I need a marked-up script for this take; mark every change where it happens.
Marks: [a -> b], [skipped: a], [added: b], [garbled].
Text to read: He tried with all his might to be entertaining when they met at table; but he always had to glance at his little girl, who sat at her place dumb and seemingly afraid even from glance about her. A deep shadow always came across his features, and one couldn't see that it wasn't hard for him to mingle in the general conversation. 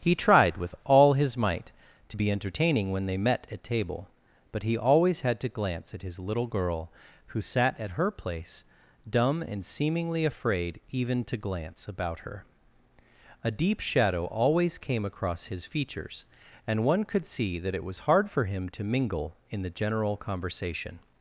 He tried with all his might to be entertaining when they met at table; but he always had to glance at his little girl, who sat at her place dumb and seemingly afraid even [from -> to] glance about her. A deep shadow always came across his features, and one [couldn't -> could] see that it [wasn't -> was] hard for him to mingle in the general conversation.